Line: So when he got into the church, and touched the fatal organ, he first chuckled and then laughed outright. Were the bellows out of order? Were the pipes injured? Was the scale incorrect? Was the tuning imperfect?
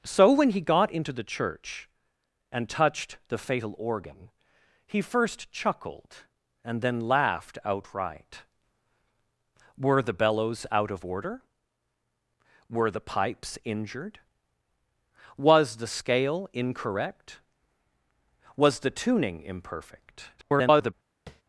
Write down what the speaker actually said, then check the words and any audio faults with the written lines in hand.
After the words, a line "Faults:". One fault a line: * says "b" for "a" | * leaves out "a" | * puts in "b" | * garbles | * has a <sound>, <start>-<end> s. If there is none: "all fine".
So when he got into the church, and touched the fatal organ, he first chuckled and then laughed outright. Were the bellows out of order? Were the pipes injured? Was the scale incorrect? Was the tuning imperfect? [garbled]
Faults:
* garbles
* has a tap, 21.3-21.4 s